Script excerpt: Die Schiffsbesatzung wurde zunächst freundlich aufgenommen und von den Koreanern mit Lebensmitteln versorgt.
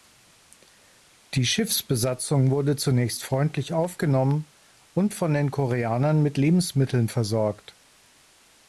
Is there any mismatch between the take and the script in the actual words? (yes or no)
no